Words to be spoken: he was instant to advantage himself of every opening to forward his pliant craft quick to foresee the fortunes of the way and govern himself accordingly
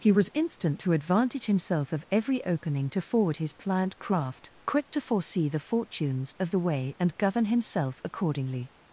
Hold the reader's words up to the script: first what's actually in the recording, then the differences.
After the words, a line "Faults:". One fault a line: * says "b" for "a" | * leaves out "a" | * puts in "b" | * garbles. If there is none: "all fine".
he was instant to advantage himself of every opening to forward his pliant craft quick to foresee the fortunes of the way and govern himself accordingly
Faults:
all fine